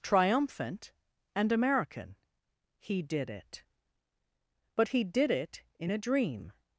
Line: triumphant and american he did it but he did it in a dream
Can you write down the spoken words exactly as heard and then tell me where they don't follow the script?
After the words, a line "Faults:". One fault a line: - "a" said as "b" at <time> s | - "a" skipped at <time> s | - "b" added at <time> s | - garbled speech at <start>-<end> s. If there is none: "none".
triumphant and american he did it but he did it in a dream
Faults:
none